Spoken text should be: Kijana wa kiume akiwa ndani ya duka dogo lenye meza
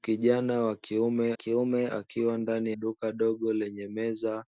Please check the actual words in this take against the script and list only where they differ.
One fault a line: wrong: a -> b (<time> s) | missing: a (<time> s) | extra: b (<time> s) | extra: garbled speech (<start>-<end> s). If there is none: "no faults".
extra: kiume (1.3 s)
missing: ya (2.7 s)